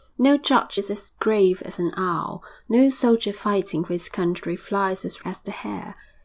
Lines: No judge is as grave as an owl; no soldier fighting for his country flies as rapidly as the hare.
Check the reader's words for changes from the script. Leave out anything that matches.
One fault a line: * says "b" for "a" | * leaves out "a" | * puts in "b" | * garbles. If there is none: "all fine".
* leaves out "rapidly"